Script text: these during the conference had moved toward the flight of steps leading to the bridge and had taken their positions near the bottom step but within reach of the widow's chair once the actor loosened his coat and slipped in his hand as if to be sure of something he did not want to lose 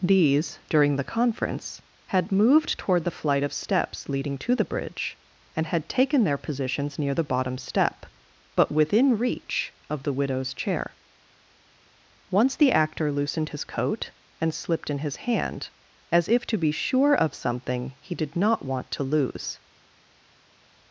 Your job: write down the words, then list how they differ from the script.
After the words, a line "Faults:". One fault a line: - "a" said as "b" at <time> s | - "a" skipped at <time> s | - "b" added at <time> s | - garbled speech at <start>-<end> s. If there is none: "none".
these during the conference had moved toward the flight of steps leading to the bridge and had taken their positions near the bottom step but within reach of the widow's chair once the actor loosened his coat and slipped in his hand as if to be sure of something he did not want to lose
Faults:
none